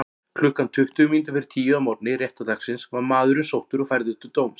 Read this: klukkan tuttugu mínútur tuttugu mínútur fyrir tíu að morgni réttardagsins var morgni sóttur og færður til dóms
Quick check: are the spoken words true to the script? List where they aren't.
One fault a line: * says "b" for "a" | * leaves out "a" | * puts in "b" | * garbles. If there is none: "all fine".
* leaves out "tuttugu mínútur"
* says "maðurinn" for "morgni"